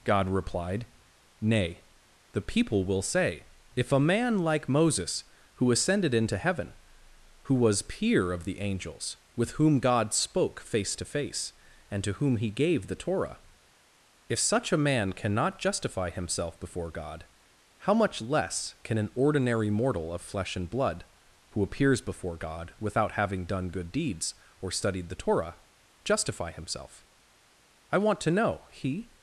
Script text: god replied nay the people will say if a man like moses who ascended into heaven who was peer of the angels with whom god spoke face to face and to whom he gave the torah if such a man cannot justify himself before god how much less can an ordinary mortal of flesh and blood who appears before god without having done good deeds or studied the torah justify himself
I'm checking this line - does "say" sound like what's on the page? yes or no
yes